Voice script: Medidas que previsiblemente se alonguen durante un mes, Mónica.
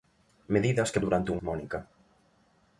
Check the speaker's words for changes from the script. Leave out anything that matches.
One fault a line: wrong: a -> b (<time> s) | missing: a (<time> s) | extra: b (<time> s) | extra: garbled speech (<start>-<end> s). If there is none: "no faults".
missing: previsiblemente se alonguen (1.0 s)
missing: mes (1.4 s)